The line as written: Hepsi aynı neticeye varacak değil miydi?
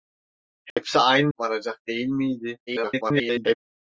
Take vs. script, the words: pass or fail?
fail